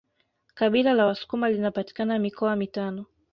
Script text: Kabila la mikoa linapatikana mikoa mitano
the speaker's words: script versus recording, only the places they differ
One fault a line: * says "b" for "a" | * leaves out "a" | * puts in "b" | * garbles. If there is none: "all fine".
* says "wasukuma" for "mikoa"